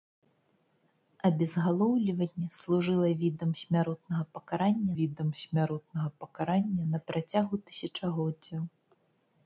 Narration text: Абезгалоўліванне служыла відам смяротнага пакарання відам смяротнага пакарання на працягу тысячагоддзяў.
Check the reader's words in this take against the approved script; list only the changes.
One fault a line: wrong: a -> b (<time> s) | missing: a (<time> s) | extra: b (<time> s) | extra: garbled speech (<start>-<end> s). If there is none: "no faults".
no faults